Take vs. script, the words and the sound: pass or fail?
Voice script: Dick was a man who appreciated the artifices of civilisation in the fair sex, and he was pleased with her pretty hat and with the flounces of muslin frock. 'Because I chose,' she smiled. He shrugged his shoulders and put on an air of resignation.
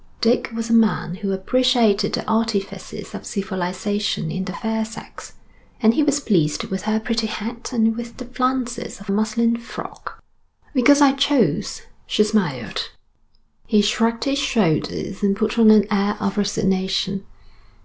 pass